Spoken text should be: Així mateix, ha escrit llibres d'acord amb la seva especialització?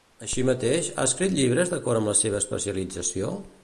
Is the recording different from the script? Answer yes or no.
no